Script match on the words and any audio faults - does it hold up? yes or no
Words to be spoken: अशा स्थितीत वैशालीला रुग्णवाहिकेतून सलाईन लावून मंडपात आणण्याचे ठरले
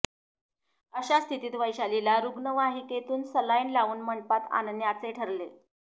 yes